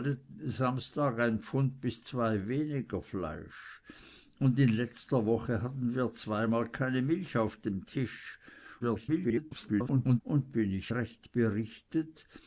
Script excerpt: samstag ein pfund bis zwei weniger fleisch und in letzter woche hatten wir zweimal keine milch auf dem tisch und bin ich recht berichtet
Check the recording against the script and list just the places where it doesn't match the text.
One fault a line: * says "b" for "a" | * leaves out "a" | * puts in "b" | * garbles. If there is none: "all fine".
* garbles